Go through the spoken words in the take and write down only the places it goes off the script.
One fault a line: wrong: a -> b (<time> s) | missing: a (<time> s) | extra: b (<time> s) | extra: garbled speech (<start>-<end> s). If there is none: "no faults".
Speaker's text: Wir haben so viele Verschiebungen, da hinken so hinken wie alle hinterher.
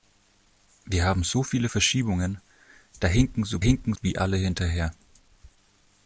no faults